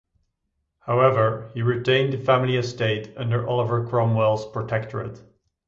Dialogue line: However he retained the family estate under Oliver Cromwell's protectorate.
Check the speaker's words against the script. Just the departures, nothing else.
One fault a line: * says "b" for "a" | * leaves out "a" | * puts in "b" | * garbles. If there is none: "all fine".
all fine